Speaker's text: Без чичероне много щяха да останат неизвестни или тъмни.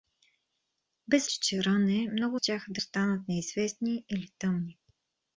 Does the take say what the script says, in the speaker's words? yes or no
yes